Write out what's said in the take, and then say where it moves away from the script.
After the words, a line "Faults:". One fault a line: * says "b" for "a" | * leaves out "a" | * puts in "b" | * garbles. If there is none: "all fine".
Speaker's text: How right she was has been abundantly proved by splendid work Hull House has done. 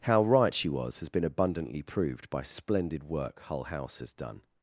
How right she was has been abundantly proved by splendid work Hull House has done.
Faults:
all fine